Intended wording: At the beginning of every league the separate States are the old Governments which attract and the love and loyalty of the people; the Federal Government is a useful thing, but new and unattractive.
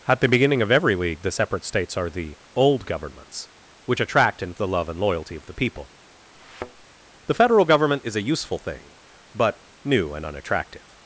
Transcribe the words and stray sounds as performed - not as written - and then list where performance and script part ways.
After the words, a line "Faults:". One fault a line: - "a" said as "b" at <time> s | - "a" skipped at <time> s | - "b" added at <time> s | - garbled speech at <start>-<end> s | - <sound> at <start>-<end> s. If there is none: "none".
At the beginning of every league the separate States are the old Governments which attract and the love and loyalty of the people; the Federal Government is a useful thing, but new and unattractive.
Faults:
- thud at 6.3-6.9 s